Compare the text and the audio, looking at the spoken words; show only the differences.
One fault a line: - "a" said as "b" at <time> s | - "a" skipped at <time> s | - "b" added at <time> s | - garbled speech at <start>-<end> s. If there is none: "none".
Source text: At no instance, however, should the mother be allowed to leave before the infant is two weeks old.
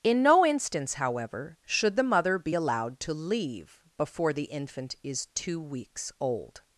- "At" said as "In" at 0.0 s